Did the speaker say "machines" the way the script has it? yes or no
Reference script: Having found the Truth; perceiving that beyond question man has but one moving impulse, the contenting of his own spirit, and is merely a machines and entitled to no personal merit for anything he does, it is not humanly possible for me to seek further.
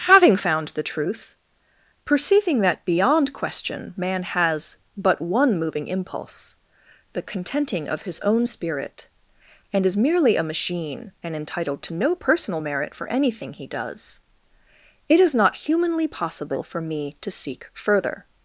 no